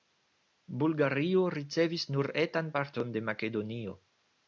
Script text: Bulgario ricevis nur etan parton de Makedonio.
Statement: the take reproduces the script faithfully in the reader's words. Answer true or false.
true